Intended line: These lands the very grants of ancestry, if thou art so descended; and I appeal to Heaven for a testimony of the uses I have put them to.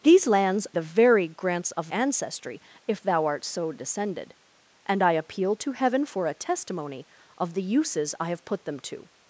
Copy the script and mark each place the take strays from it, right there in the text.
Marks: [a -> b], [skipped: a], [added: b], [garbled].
These lands the very grants of ancestry, if thou art so descended; and I appeal to Heaven for a testimony of the uses I have put them to.